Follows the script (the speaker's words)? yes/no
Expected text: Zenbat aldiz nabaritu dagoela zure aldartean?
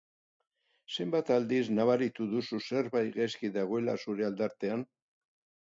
no